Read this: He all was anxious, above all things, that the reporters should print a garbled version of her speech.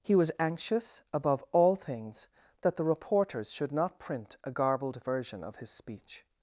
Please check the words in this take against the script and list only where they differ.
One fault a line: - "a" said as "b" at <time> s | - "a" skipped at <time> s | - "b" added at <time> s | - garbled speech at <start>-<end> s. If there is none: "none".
- "all" skipped at 0.1 s
- "not" added at 3.7 s
- "her" said as "his" at 5.6 s